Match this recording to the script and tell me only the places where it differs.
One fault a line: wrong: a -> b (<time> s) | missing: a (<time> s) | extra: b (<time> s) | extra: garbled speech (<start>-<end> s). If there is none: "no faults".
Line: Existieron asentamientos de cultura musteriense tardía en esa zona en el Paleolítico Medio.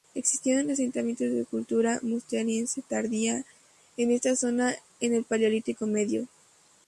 wrong: esa -> esta (4.1 s)